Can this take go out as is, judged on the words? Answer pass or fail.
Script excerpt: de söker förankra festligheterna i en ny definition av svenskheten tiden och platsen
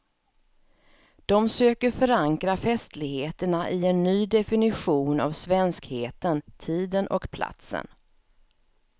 pass